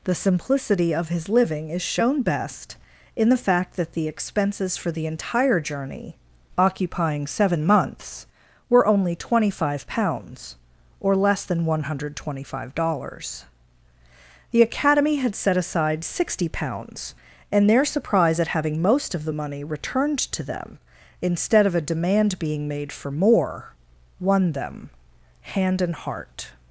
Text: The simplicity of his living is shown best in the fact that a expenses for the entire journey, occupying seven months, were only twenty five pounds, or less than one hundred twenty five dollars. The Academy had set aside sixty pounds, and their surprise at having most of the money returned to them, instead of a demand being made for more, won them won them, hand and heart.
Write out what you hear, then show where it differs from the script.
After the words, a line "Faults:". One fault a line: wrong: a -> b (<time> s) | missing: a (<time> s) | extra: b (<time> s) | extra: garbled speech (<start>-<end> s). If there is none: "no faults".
The simplicity of his living is shown best in the fact that the expenses for the entire journey, occupying seven months, were only twenty five pounds, or less than one hundred twenty five dollars. The Academy had set aside sixty pounds, and their surprise at having most of the money returned to them, instead of a demand being made for more, won them, hand and heart.
Faults:
wrong: a -> the (3.9 s)
missing: won them (24.9 s)